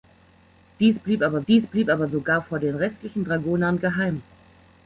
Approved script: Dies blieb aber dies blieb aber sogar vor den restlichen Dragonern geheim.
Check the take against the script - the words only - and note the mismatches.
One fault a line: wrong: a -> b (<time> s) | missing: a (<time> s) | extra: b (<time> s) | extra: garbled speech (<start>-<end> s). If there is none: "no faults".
no faults